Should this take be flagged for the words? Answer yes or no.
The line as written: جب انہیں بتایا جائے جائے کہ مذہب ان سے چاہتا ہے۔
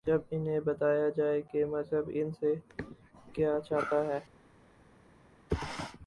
yes